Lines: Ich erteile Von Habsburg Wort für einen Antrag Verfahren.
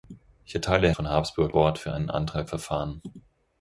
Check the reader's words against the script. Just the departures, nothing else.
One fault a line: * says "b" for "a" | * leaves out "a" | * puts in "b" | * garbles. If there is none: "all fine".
all fine